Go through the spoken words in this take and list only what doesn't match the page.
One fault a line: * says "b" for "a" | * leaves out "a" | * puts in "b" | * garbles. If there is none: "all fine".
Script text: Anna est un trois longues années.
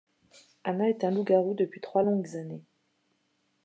* puts in "loup garou depuis"